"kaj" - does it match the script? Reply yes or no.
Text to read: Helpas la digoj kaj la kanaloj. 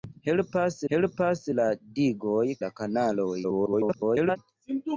no